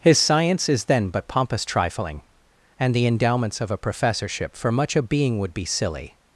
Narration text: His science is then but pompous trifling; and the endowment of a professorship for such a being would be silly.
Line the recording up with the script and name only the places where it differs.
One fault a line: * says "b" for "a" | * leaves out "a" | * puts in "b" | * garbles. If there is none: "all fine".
* says "endowments" for "endowment"
* says "much" for "such"